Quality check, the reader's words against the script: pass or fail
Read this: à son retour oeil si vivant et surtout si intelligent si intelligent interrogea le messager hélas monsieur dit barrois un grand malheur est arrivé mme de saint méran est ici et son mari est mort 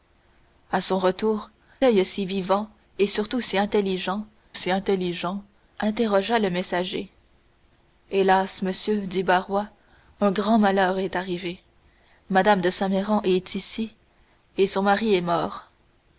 pass